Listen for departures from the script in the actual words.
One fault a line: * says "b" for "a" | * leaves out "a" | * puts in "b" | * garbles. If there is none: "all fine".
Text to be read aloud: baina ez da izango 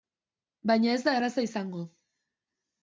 * puts in "erraza"